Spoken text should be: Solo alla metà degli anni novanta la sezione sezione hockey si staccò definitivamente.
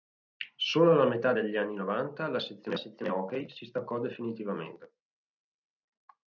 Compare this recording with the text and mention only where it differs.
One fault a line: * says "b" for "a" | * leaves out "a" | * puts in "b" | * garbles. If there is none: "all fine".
all fine